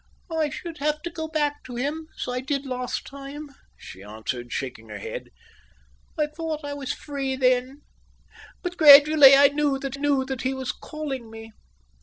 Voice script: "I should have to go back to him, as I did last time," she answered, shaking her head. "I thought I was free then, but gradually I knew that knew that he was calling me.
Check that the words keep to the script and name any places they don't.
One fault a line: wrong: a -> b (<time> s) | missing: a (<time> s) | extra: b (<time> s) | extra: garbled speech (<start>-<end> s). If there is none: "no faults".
no faults